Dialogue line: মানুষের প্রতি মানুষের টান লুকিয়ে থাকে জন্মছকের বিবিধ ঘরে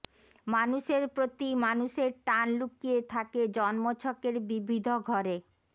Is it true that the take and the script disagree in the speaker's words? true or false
false